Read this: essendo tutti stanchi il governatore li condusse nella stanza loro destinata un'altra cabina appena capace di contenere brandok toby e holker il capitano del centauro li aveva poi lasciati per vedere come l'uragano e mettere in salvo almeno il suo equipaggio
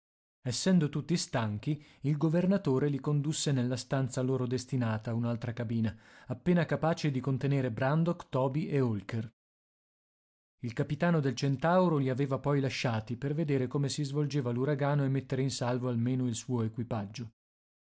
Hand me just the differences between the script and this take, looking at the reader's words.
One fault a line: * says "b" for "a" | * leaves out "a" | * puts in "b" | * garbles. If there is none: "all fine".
* puts in "si svolgeva"